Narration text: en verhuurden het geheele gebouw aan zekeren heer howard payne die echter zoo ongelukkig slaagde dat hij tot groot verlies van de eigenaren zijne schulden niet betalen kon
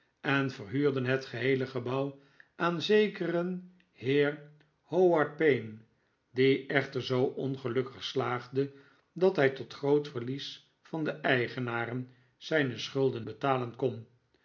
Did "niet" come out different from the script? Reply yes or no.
yes